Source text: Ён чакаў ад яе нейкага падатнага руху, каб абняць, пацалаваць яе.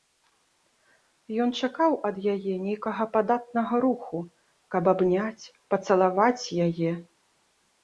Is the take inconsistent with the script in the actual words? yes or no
no